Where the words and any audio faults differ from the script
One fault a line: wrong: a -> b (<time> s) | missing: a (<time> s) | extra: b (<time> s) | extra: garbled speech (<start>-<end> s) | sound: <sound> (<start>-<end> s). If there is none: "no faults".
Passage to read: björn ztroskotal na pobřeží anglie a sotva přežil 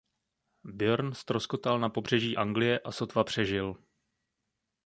no faults